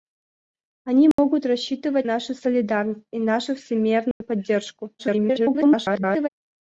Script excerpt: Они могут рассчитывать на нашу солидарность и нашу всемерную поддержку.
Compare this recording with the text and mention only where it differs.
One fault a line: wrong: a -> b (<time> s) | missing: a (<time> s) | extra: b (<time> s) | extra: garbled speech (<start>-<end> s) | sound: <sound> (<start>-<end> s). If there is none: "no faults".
sound: dropout (1.1-1.2 s)
missing: на (2.1 s)
sound: dropout (4.1-4.2 s)
extra: garbled speech (5.0-6.3 s)